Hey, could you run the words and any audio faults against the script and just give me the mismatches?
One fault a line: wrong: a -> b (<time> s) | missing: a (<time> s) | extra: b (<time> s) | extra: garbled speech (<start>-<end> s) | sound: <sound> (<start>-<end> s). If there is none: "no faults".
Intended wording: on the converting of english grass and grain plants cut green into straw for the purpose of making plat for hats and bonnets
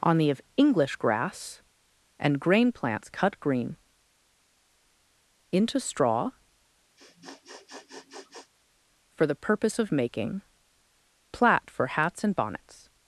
missing: converting (0.3 s)
sound: sniff (7.0-8.5 s)